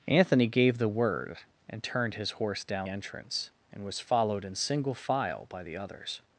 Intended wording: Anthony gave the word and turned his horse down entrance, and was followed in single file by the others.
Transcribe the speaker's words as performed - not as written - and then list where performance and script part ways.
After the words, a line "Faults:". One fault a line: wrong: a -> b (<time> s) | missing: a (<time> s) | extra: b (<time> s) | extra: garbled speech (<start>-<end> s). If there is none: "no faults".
Anthony gave the word and turned his horse down entrance, and was followed in single file by the others.
Faults:
no faults